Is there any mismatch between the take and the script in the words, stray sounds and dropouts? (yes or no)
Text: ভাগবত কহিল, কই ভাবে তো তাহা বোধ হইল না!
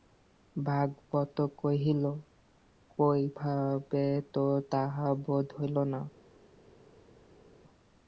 no